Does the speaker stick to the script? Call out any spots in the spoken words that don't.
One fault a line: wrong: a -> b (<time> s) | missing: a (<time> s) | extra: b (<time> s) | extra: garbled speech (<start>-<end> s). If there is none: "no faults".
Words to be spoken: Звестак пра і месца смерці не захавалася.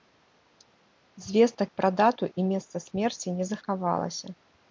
extra: дату (2.0 s)